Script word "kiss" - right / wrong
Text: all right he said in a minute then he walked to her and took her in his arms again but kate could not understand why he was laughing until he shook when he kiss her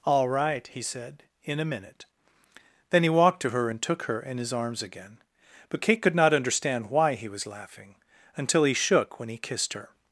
wrong